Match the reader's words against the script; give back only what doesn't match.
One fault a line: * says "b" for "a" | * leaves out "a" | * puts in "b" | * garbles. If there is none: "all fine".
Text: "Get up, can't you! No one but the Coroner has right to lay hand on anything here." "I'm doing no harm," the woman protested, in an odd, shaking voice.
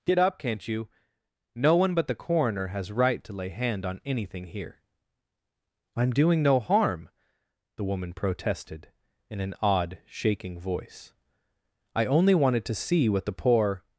* puts in "I only wanted to see what the poor"